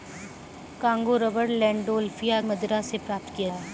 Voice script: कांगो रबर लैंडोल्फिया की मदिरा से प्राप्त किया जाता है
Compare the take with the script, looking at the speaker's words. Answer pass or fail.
fail